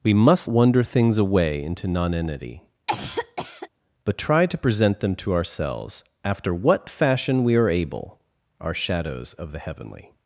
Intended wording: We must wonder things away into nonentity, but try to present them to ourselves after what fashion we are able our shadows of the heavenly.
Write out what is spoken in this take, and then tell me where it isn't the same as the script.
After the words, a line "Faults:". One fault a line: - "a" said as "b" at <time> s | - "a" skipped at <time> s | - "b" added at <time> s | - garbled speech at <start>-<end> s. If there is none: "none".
We must wonder things away into nonentity, but try to present them to ourselves after what fashion we are able our shadows of the heavenly.
Faults:
none